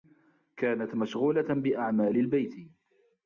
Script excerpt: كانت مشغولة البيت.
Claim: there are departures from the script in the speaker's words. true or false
true